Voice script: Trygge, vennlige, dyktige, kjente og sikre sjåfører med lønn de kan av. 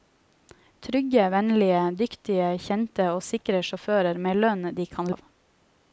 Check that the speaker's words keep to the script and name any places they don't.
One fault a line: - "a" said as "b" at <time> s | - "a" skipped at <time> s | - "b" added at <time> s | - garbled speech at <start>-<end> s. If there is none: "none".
none